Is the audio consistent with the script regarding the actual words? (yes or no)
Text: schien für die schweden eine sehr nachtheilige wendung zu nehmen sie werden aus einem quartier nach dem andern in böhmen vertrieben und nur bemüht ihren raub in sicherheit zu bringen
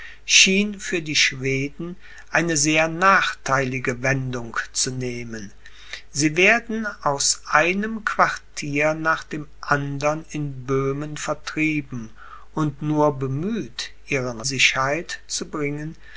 no